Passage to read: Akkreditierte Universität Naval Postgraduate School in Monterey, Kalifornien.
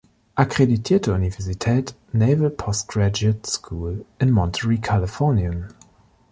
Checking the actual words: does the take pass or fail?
pass